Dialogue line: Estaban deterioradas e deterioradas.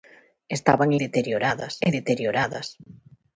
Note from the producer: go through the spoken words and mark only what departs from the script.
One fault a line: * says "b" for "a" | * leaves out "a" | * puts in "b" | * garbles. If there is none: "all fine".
all fine